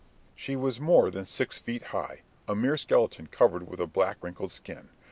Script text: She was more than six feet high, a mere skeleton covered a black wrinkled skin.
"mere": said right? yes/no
yes